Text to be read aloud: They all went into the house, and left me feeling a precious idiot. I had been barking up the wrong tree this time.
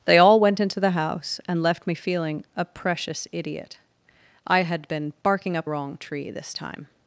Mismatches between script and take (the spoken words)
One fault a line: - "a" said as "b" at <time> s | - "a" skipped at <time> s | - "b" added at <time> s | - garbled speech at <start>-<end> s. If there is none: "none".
- "the" skipped at 5.7 s